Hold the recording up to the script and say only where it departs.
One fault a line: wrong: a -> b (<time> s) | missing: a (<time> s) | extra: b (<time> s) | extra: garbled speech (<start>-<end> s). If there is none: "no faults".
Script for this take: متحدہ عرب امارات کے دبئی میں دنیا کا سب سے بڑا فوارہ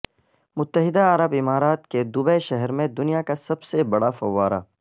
extra: شہر (2.4 s)